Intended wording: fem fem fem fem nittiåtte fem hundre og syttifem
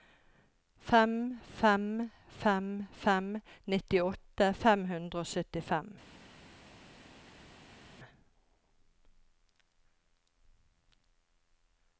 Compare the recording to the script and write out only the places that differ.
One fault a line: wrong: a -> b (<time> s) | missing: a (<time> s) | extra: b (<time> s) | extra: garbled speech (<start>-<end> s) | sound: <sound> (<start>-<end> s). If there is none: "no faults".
no faults